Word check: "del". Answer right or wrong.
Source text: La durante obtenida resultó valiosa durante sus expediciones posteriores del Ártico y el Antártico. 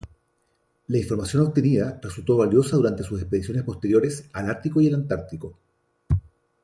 wrong